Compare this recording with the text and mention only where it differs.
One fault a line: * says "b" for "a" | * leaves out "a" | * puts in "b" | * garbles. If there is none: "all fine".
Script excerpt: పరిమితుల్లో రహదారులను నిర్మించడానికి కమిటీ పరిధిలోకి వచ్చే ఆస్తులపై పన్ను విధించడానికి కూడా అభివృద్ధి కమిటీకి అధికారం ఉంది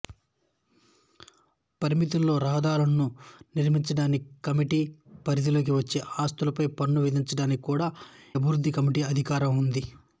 all fine